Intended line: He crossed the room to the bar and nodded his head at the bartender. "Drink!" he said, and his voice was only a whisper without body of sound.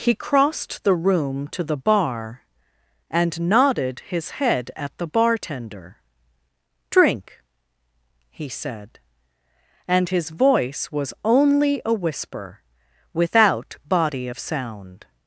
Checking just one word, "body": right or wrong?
right